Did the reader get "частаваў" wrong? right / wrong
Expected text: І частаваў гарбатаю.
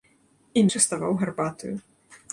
right